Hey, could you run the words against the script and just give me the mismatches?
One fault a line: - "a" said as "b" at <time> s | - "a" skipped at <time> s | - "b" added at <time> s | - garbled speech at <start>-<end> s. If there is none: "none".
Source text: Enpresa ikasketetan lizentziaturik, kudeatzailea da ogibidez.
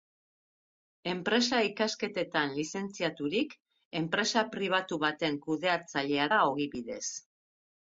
- "enpresa pribatu baten" added at 4.0 s